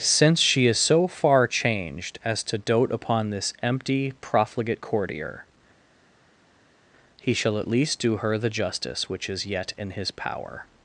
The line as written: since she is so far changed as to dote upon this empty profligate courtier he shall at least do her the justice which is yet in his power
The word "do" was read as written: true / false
true